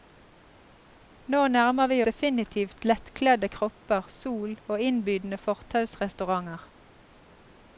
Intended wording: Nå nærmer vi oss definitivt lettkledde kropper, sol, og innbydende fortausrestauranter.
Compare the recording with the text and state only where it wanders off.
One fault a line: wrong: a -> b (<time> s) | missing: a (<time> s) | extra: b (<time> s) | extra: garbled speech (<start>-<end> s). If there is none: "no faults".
missing: oss (2.0 s)